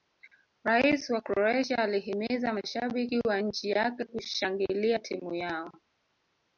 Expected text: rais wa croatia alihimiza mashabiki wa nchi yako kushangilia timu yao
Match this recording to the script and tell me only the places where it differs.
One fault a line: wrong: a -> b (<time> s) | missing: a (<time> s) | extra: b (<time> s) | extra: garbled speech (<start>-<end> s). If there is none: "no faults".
wrong: yako -> yake (3.7 s)